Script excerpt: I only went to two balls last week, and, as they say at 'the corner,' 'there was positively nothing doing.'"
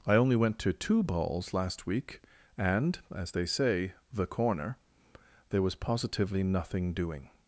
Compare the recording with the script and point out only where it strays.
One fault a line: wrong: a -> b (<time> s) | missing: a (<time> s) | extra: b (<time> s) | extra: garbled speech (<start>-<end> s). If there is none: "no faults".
missing: at (3.9 s)